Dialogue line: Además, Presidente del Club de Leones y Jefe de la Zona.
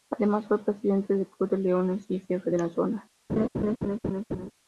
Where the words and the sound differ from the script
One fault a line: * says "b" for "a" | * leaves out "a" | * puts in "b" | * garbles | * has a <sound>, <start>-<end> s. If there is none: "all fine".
* puts in "fue"
* has a laugh, 3.3-4.5 s